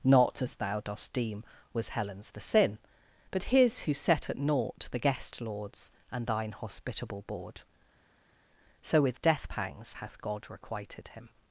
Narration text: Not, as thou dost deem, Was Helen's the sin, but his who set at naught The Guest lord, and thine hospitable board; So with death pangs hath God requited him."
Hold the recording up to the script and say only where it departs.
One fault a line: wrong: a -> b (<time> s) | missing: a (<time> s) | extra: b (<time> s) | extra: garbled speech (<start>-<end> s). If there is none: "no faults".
wrong: lord -> lords (5.4 s)